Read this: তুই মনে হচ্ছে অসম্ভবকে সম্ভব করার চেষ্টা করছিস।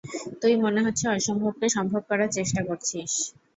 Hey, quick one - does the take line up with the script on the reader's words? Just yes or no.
yes